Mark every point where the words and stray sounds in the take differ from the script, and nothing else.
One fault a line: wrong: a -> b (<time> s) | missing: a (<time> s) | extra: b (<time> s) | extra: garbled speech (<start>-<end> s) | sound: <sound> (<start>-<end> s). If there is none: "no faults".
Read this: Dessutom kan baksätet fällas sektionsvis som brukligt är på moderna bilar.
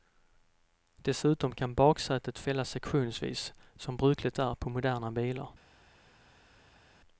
no faults